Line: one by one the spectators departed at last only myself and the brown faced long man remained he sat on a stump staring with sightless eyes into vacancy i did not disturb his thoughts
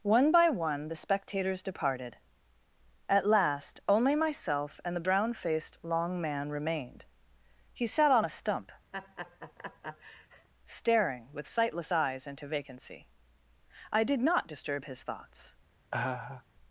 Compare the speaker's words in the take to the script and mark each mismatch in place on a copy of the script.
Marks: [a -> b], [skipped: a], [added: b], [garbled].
one by one the spectators departed at last only myself and the brown faced long man remained he sat on a stump staring with sightless eyes into vacancy i did not disturb his thoughts